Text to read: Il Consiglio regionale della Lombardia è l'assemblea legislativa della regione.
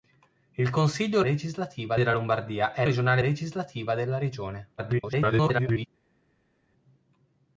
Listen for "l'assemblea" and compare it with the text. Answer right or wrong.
wrong